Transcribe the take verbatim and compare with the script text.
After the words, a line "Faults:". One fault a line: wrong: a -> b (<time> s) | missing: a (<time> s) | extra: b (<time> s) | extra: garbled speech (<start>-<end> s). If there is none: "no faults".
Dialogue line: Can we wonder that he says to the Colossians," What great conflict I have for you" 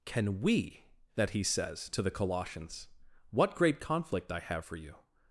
Can we that he says to the Colossians," What great conflict I have for you"
Faults:
missing: wonder (0.8 s)